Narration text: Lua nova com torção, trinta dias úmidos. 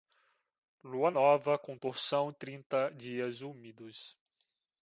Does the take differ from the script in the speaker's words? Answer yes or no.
no